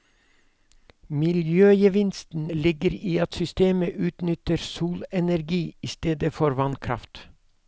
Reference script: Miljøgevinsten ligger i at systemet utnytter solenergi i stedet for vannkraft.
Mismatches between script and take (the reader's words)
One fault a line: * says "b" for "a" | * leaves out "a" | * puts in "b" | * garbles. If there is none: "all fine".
all fine